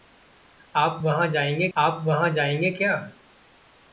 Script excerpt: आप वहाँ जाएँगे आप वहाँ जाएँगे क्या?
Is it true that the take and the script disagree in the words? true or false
false